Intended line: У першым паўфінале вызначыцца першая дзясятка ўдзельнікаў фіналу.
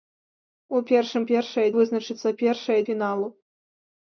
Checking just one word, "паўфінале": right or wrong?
wrong